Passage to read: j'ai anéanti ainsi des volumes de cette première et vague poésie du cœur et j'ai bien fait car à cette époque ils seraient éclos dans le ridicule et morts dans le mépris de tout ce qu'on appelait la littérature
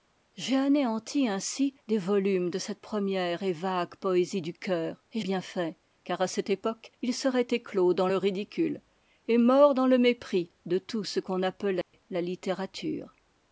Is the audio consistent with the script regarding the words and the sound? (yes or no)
no